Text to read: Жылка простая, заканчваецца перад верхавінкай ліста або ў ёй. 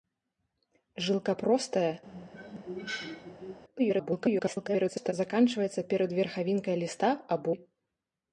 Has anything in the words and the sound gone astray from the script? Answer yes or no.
yes